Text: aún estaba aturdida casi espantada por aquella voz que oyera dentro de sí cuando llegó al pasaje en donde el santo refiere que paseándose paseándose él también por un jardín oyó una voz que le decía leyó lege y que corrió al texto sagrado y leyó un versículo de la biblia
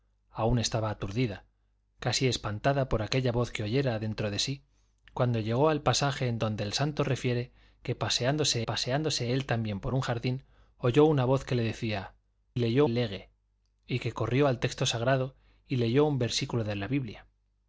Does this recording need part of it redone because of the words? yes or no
no